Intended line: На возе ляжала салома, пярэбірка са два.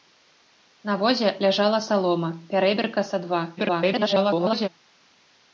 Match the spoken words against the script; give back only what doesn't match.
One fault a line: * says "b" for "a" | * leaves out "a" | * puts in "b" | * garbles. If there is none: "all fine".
* garbles